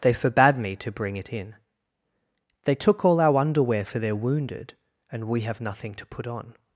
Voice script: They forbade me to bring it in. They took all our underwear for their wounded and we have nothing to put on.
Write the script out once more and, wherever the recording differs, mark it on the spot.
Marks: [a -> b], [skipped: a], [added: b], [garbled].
They forbade me to bring it in. They took all our underwear for their wounded and we have nothing to put on.